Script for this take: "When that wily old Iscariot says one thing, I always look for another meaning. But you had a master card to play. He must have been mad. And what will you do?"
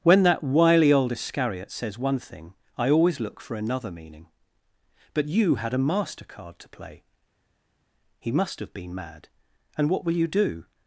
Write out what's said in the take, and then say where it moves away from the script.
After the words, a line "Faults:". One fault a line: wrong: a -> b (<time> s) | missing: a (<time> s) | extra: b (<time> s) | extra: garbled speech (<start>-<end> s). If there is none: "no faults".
"When that wily old Iscariot says one thing, I always look for another meaning. But you had a master card to play. He must have been mad. And what will you do?"
Faults:
no faults